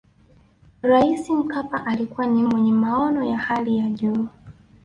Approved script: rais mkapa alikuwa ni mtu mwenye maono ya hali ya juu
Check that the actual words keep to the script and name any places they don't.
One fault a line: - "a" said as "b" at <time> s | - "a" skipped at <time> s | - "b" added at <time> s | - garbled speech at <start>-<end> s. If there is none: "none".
- "mtu" skipped at 2.4 s